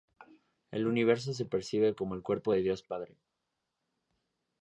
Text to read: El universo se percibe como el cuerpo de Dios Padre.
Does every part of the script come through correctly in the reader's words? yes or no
yes